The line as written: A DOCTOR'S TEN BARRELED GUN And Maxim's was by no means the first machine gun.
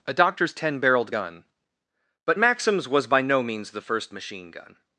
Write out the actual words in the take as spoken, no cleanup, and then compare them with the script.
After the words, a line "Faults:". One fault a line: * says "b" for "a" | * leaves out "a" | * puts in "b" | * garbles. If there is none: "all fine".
A DOCTOR'S TEN BARRELED GUN But Maxim's was by no means the first machine gun.
Faults:
* says "But" for "And"